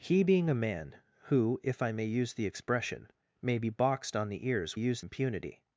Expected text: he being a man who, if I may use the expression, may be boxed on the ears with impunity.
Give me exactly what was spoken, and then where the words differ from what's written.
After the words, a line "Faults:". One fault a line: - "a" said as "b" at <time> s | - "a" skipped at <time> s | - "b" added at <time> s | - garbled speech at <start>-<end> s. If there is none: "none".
he being a man who, if I may use the expression, may be boxed on the ears use impunity.
Faults:
- "with" said as "use" at 4.7 s